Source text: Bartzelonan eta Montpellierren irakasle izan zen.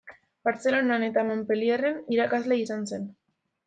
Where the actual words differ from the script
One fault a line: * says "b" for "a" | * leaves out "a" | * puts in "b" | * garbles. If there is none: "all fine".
all fine